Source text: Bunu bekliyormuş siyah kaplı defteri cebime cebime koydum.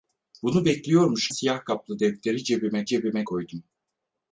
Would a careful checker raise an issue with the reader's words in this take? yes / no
no